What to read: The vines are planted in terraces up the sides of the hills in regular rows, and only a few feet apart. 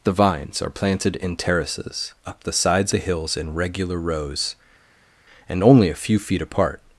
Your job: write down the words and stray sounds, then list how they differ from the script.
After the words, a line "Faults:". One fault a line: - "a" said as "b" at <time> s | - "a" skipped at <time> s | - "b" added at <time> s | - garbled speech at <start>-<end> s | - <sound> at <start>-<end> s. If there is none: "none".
The vines are planted in terraces up the sides the hills in regular rows, and only a few feet apart.
Faults:
- "of" skipped at 2.9 s